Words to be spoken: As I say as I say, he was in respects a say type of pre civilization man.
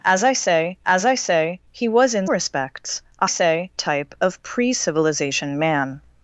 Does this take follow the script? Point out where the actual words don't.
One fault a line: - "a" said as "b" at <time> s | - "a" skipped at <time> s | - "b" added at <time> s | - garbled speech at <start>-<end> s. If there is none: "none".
none